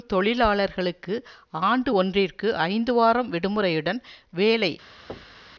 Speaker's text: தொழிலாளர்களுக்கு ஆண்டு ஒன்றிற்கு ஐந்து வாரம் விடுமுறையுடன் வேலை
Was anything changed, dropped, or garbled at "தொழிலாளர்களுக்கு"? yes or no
no